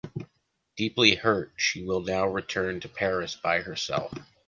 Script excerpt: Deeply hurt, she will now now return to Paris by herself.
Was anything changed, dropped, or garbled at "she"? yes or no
no